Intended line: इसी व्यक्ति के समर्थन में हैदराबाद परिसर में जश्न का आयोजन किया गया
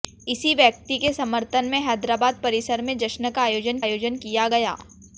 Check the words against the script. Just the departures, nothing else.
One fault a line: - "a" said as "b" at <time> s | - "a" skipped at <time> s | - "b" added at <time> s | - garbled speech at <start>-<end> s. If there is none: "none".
- "आयोजन" added at 3.8 s